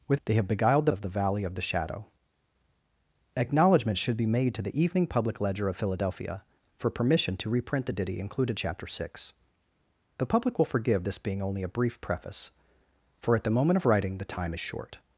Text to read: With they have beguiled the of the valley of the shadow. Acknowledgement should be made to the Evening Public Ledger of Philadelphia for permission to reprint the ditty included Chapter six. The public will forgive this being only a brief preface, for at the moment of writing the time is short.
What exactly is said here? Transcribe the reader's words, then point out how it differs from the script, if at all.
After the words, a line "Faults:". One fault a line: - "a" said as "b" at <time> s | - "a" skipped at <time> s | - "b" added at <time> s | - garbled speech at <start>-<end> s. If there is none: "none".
With they have beguiled the of the valley of the shadow. Acknowledgement should be made to the Evening Public Ledger of Philadelphia for permission to reprint the ditty included Chapter six. The public will forgive this being only a brief preface, for at the moment of writing the time is short.
Faults:
none